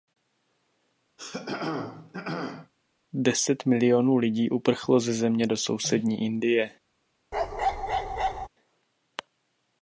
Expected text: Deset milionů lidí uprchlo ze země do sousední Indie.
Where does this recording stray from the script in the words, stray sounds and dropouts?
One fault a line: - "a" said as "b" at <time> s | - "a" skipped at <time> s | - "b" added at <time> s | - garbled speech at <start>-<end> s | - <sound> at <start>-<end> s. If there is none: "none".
- throat clearing at 1.2-2.7 s
- bark at 7.3-8.5 s